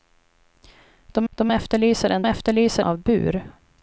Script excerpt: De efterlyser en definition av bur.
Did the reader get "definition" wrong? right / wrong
wrong